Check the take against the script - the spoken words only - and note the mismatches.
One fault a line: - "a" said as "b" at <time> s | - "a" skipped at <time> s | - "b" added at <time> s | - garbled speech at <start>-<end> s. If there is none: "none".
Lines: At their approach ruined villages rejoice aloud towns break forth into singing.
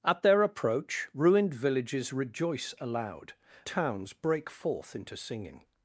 none